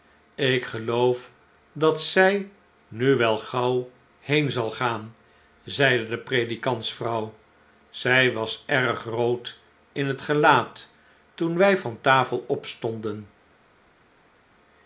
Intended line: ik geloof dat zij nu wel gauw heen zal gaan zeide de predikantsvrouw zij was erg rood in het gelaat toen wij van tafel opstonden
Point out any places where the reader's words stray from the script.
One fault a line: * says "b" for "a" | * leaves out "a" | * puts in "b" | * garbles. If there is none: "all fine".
all fine